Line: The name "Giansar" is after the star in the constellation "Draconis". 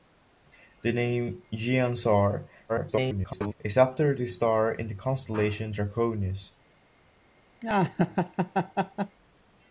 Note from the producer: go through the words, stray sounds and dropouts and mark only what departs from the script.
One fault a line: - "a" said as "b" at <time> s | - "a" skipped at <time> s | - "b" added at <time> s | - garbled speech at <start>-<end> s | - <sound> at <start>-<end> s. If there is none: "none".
- garbled speech at 2.7-3.5 s
- laugh at 7.6-9.2 s